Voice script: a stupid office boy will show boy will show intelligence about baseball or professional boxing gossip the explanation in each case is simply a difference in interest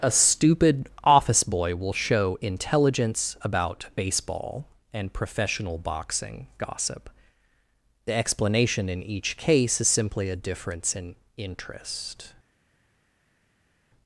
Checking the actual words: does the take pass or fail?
fail